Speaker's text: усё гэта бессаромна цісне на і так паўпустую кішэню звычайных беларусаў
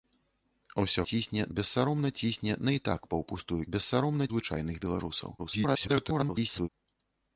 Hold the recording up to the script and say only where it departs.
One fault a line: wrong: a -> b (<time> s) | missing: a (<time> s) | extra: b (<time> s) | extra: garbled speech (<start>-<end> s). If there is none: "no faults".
wrong: гэта -> цісне (1.1 s)
wrong: кішэню -> бессаромна (3.7 s)
extra: garbled speech (5.4-6.7 s)